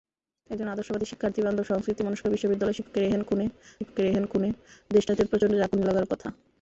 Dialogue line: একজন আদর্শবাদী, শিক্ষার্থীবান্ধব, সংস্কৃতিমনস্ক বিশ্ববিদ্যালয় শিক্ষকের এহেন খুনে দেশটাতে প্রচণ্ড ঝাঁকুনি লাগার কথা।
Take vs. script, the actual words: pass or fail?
fail